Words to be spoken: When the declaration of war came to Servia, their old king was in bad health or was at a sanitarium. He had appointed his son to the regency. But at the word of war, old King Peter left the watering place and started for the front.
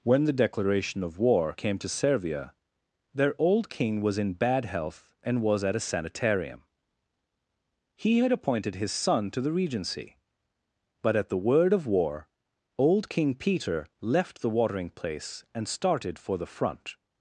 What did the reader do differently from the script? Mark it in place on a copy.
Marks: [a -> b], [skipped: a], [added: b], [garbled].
When the declaration of war came to Servia, their old king was in bad health [or -> and] was at a sanitarium. He had appointed his son to the regency. But at the word of war, old King Peter left the watering place and started for the front.